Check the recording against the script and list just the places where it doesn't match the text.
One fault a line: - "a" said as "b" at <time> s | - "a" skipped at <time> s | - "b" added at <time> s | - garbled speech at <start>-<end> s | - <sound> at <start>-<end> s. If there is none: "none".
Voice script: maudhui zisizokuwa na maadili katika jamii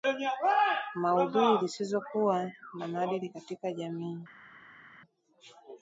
none